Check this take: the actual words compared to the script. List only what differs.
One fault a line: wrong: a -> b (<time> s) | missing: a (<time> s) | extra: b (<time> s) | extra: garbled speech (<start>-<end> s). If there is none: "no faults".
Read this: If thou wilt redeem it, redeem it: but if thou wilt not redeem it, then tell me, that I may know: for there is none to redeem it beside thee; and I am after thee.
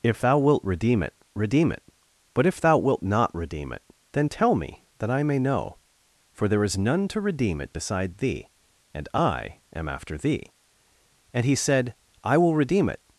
extra: And he said I will redeem it (11.3 s)